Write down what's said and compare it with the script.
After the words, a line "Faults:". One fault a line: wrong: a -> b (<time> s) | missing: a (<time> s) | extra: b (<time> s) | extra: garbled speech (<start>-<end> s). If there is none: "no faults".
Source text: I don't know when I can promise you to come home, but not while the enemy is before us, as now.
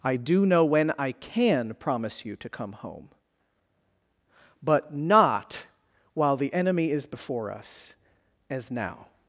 I do know when I can promise you to come home, but not while the enemy is before us, as now.
Faults:
wrong: don't -> do (0.1 s)